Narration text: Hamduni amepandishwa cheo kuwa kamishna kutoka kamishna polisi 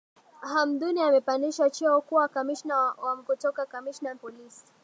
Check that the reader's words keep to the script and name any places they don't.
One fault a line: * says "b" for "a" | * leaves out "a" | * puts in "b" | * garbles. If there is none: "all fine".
all fine